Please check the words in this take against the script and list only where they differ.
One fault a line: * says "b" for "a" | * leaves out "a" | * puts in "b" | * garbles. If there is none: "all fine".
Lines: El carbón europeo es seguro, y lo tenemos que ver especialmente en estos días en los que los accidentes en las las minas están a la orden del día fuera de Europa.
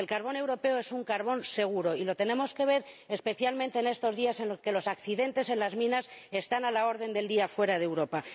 * puts in "un carbón"
* leaves out "las"